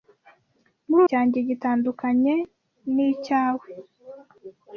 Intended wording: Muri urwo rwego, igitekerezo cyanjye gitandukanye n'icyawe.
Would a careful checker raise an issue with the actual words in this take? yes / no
yes